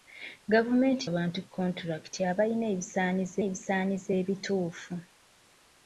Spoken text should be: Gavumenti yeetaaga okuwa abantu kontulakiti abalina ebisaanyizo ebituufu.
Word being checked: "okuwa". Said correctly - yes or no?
no